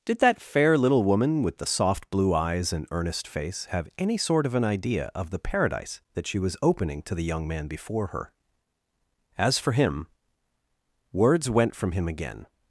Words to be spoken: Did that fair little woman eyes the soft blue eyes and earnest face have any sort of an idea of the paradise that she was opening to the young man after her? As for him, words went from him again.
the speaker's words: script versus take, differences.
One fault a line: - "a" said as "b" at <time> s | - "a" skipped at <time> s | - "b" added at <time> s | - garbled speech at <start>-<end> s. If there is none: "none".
- "eyes" said as "with" at 1.4 s
- "after" said as "before" at 7.7 s